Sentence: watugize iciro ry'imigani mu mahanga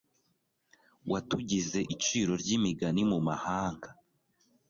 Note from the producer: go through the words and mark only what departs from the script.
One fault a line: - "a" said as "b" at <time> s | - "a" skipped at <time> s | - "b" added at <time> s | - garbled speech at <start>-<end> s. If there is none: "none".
none